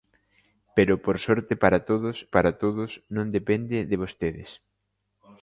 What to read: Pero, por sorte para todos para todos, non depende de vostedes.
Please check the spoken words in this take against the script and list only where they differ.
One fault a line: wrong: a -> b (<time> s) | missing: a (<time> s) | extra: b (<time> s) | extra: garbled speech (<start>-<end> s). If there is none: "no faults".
no faults